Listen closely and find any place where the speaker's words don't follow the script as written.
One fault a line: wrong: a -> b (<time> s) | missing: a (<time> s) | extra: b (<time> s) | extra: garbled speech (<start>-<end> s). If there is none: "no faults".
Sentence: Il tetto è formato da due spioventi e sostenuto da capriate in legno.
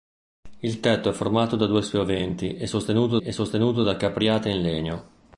extra: e sostenuto (3.2 s)